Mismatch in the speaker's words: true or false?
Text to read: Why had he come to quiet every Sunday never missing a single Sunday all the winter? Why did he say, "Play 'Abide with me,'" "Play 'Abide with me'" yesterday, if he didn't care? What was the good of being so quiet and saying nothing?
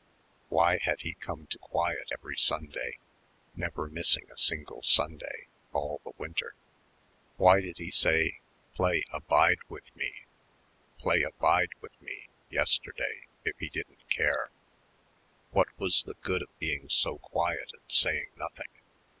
false